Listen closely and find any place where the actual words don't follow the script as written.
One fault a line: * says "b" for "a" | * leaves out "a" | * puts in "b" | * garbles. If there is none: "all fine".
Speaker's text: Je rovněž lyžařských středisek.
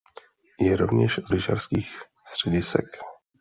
all fine